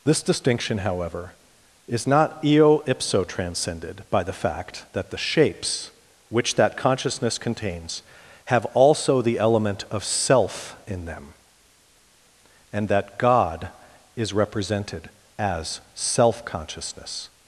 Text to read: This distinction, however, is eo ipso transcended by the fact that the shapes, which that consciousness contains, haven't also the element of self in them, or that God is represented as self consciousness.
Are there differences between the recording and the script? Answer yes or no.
yes